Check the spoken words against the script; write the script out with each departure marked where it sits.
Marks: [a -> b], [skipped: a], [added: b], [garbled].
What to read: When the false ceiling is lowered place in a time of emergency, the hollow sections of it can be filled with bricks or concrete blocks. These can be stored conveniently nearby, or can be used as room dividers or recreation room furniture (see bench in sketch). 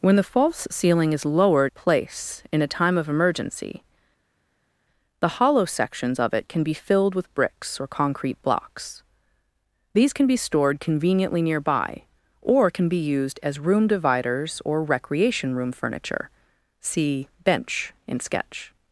When the false ceiling is lowered place in a time of emergency, the hollow sections of it can be filled with bricks or concrete blocks. These can be stored conveniently nearby, or can be used as room dividers or recreation room furniture (see bench in sketch).